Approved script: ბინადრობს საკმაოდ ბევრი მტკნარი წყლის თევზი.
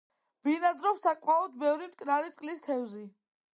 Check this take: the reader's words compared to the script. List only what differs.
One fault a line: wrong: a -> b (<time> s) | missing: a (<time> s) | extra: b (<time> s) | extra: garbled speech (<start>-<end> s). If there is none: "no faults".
no faults